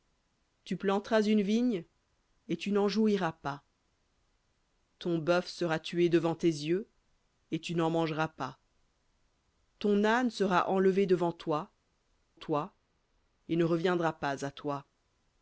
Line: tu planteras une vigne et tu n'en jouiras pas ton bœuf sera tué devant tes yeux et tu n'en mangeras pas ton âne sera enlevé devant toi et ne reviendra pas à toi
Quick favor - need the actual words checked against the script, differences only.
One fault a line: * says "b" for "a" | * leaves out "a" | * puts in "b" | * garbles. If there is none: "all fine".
* puts in "toi"